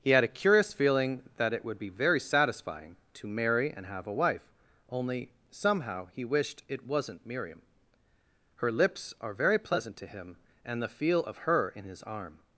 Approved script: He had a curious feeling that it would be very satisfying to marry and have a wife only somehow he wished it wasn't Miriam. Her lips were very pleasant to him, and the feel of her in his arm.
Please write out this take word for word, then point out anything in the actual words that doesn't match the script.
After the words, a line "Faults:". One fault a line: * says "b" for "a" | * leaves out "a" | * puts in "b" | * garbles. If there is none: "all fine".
He had a curious feeling that it would be very satisfying to marry and have a wife only somehow he wished it wasn't Miriam. Her lips are very pleasant to him, and the feel of her in his arm.
Faults:
* says "are" for "were"